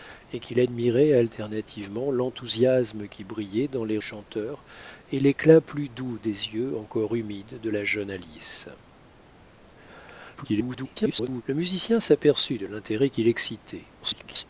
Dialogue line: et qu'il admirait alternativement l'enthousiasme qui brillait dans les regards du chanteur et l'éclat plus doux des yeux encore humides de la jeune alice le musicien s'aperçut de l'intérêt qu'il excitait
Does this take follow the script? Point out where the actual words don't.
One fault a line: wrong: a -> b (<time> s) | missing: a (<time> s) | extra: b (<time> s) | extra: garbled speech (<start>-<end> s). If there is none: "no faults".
missing: regards du (4.0 s)
extra: garbled speech (10.4-11.4 s)
extra: garbled speech (14.0-14.4 s)